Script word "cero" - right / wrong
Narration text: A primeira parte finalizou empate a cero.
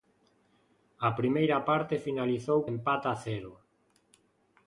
right